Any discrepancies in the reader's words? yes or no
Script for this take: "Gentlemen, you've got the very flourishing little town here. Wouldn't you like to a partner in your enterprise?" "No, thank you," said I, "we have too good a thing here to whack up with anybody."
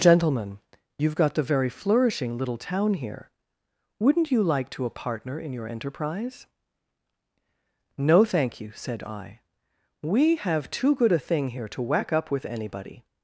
no